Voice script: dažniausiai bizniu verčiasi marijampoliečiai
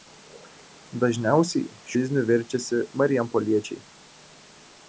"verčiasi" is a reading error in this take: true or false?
false